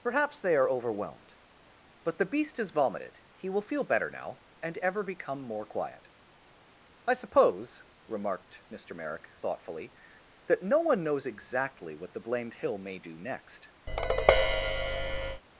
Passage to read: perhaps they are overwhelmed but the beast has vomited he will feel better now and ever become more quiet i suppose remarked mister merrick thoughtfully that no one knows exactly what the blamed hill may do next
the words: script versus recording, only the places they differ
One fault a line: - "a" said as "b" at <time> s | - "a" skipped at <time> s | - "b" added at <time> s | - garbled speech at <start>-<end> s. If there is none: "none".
none